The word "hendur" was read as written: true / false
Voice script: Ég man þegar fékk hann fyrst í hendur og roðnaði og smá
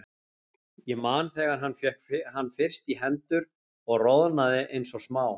true